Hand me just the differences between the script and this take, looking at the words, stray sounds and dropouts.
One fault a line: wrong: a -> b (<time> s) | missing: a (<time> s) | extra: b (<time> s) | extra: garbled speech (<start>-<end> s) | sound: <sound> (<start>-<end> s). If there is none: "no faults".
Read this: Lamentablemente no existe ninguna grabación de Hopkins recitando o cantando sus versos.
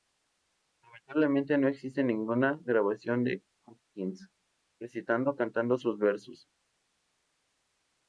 no faults